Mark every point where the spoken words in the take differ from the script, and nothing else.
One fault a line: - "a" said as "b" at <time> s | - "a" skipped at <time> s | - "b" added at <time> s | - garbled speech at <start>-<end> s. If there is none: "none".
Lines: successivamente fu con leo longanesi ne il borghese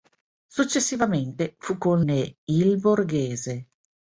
- "leo longanesi" skipped at 2.0 s